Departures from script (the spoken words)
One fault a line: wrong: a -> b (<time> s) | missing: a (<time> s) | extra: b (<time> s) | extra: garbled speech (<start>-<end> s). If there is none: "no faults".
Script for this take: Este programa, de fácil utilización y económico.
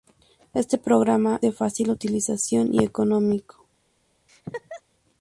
no faults